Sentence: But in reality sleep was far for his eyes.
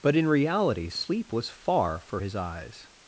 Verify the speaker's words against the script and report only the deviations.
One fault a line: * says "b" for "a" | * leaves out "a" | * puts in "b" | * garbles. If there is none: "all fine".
all fine